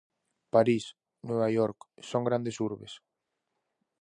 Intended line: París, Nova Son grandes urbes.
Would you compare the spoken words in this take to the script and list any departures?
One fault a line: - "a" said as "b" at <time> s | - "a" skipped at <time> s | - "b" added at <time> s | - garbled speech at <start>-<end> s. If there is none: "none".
- "York" added at 1.6 s